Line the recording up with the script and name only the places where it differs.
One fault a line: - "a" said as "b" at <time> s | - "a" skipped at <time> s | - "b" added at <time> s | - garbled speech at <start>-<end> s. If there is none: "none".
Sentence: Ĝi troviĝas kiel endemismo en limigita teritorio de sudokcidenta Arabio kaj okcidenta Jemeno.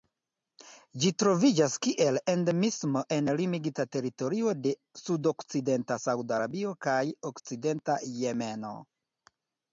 - "Sauda" added at 6.1 s